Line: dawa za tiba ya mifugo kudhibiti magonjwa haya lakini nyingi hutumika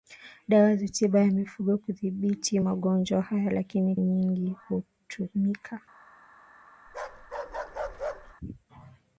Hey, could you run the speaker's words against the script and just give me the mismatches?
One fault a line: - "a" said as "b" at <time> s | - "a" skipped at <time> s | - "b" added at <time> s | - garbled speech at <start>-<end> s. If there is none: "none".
none